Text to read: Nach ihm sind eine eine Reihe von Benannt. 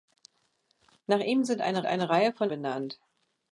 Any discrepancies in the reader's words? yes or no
no